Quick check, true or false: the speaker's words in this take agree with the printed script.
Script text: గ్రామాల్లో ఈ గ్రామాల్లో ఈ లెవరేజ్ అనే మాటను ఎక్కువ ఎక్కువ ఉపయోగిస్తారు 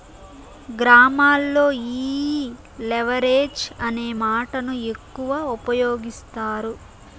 false